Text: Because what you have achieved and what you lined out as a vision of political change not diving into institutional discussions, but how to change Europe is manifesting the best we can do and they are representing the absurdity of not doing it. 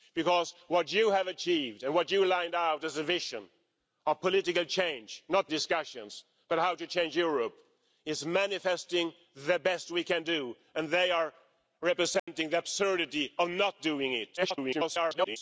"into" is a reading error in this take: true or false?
true